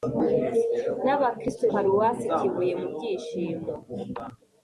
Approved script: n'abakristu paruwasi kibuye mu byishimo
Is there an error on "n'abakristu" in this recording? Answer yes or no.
no